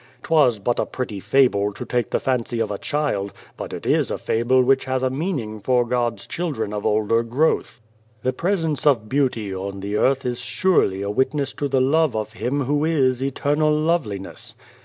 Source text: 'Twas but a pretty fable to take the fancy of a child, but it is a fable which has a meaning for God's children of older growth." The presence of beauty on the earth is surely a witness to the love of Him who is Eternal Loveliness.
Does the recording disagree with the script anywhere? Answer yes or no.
no